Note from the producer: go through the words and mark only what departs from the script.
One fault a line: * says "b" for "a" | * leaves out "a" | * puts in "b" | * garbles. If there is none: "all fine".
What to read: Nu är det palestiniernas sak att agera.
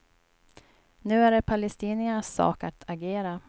all fine